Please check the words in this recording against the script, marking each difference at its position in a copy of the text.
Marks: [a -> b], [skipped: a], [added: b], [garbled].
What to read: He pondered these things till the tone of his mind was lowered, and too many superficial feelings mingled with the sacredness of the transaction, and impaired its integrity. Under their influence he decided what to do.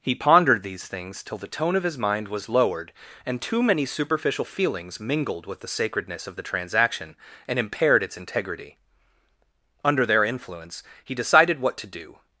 He pondered these things till the tone of his mind was lowered, and too many superficial feelings mingled with the sacredness of the transaction, and impaired its integrity. Under their influence he decided what to do.